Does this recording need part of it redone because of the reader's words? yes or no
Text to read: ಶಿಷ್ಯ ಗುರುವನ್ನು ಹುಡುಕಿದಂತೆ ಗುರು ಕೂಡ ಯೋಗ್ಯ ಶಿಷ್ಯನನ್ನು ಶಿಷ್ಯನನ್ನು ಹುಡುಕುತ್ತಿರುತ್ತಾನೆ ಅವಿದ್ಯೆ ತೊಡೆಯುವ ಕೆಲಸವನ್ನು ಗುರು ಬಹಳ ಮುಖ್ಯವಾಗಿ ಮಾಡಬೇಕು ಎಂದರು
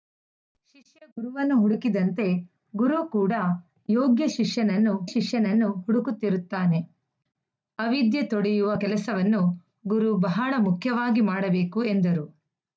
no